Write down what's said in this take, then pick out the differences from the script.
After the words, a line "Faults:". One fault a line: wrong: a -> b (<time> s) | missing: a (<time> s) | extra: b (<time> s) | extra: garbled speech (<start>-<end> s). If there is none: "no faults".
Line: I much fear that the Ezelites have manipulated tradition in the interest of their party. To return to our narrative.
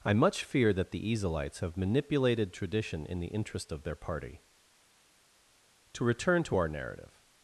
I much fear that the Ezelites have manipulated tradition in the interest of their party. To return to our narrative.
Faults:
no faults